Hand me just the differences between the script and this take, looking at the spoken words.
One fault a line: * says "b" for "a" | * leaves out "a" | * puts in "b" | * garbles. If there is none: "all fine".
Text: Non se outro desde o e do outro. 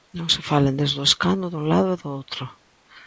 * says "falen" for "outro"
* puts in "escano dun lado"